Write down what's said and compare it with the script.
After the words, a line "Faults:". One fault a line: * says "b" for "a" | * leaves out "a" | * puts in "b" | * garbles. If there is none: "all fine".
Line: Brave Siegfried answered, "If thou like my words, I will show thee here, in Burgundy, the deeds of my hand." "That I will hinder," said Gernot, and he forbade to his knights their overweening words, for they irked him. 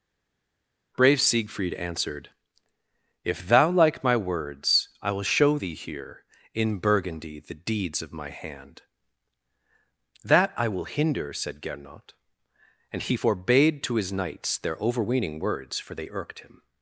Brave Siegfried answered, "If thou like my words, I will show thee here, in Burgundy, the deeds of my hand." "That I will hinder," said Gernot, and he forbade to his knights their overweening words, for they irked him.
Faults:
all fine